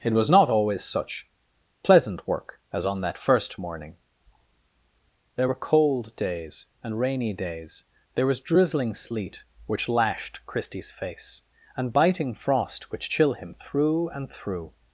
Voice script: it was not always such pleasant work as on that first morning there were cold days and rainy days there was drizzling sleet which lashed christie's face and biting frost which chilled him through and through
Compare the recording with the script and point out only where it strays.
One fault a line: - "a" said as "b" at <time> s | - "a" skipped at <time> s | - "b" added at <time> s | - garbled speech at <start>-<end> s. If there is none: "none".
- "chilled" said as "chill" at 13.1 s